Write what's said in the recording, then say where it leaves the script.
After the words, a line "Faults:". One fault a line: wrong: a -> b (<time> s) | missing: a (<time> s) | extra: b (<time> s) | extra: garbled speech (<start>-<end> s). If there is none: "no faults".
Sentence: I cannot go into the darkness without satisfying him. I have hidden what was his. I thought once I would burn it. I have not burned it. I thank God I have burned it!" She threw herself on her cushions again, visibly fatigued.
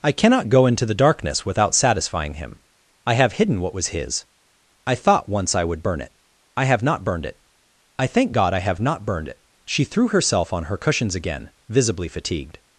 I cannot go into the darkness without satisfying him. I have hidden what was his. I thought once I would burn it. I have not burned it. I thank God I have not burned it!" She threw herself on her cushions again, visibly fatigued.
Faults:
extra: not (8.8 s)